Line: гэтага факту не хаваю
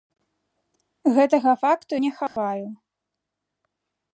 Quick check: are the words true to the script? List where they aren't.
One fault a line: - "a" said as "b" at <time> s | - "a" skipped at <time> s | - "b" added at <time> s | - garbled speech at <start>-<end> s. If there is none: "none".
none